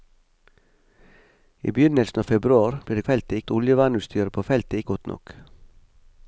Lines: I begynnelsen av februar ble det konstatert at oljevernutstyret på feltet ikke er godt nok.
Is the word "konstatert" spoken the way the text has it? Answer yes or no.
no